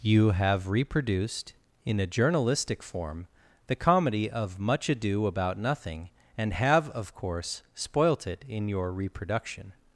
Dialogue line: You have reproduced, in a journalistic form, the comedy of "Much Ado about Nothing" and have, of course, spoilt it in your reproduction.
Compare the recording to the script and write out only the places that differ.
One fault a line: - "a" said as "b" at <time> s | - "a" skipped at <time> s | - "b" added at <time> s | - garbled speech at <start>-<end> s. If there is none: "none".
none